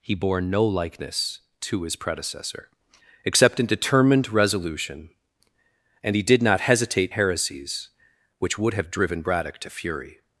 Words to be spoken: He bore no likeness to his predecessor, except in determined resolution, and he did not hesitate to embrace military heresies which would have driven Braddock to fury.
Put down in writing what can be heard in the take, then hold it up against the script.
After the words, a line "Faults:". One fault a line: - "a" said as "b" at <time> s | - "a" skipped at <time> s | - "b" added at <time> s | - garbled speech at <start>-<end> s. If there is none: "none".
He bore no likeness to his predecessor, except in determined resolution, and he did not hesitate heresies which would have driven Braddock to fury.
Faults:
- "to embrace military" skipped at 7.1 s